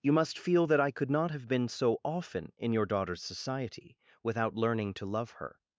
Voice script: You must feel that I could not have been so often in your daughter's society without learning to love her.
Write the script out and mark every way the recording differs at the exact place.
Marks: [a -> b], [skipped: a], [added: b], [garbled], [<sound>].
You must feel that I could not have been so often in your daughter's society without learning to love her.